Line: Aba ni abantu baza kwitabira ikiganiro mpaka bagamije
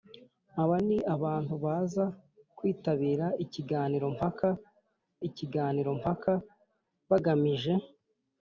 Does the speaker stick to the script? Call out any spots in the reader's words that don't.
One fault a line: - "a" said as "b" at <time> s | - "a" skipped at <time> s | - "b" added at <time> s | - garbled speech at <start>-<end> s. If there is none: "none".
- "ikiganiro mpaka" added at 5.3 s